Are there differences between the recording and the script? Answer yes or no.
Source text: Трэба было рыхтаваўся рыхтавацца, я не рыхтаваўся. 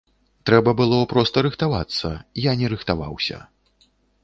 yes